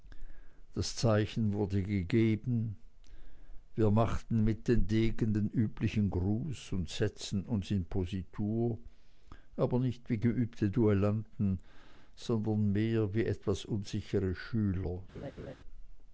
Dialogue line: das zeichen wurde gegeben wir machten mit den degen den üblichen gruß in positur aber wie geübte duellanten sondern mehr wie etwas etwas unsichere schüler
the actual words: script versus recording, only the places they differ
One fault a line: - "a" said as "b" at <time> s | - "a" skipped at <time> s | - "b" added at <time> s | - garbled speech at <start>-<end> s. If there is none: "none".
- "und setzten uns" added at 6.7 s
- "nicht" added at 9.8 s
- "etwas" skipped at 13.6 s